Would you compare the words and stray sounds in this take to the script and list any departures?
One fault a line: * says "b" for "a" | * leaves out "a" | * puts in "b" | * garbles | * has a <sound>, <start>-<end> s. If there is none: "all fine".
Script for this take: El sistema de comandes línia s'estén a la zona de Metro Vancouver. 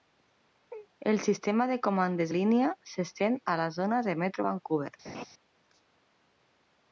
* has a laugh, 5.0-5.3 s